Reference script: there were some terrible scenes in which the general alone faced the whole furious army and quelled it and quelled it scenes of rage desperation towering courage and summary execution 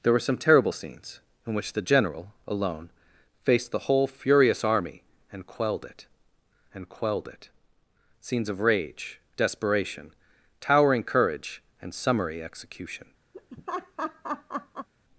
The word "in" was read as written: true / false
true